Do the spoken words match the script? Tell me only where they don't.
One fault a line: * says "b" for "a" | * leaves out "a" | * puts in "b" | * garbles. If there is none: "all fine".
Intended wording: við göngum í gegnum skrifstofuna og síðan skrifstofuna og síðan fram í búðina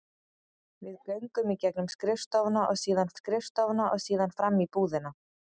all fine